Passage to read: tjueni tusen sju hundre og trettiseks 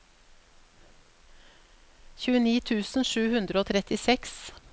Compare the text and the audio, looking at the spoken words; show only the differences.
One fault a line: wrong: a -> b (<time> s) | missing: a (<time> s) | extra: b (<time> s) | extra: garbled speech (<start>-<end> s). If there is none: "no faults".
no faults